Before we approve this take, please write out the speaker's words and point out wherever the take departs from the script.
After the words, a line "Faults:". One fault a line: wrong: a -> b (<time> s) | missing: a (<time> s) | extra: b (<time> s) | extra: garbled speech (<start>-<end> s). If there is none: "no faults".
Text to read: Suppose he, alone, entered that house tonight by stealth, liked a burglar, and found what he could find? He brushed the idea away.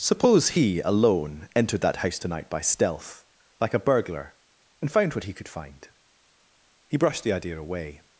Suppose he, alone, entered that house tonight by stealth, like a burglar, and found what he could find? He brushed the idea away.
Faults:
wrong: liked -> like (3.6 s)